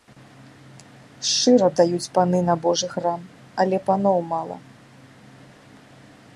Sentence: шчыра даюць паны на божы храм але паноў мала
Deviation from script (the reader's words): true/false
false